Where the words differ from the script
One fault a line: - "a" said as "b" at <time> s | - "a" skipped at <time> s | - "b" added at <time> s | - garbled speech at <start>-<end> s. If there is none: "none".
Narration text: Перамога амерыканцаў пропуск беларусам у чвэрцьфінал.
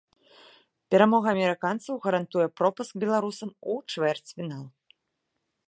- "гарантуе" added at 2.0 s